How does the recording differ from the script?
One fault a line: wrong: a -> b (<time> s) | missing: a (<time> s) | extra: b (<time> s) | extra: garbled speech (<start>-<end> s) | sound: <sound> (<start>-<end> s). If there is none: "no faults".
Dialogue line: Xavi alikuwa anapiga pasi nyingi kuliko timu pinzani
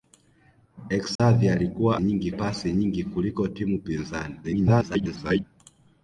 sound: dropout (1.2-1.2 s)
wrong: anapiga -> nyingi (2.0 s)
extra: garbled speech (4.4-5.4 s)